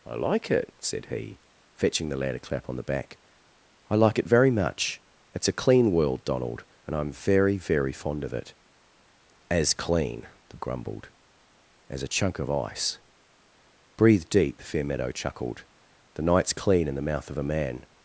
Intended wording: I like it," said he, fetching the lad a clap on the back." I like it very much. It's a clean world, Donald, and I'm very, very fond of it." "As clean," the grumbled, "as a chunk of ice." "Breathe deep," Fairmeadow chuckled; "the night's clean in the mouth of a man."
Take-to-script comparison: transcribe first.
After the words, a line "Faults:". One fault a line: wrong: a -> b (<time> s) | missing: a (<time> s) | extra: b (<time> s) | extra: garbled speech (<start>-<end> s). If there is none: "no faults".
I like it," said he, fetching the lad a clap on the back." I like it very much. It's a clean world, Donald, and I'm very, very fond of it." "As clean," the grumbled, "as a chunk of ice." "Breathe deep," Fairmeadow chuckled; "the night's clean in the mouth of a man."
Faults:
no faults